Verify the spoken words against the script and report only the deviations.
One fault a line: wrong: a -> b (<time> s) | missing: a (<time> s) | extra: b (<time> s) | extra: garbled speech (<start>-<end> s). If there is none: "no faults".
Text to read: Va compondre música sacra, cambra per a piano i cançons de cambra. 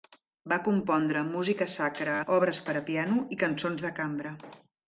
wrong: cambra -> obres (2.4 s)